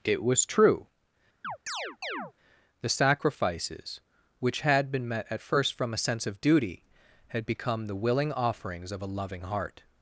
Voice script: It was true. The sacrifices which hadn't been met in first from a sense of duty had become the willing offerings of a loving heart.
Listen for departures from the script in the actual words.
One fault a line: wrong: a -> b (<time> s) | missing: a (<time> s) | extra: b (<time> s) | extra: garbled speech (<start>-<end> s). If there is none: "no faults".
wrong: hadn't -> had (4.6 s)
wrong: in -> at (5.3 s)